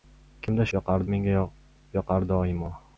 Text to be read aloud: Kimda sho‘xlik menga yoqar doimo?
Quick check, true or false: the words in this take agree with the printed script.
false